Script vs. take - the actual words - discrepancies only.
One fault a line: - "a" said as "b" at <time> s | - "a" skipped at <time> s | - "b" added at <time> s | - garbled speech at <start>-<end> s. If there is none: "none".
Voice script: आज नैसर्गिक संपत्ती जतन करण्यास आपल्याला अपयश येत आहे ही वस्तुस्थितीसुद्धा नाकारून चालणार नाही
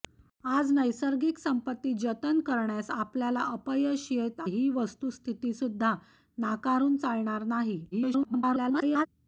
- "आहे" skipped at 4.4 s
- garbled speech at 7.9-9.1 s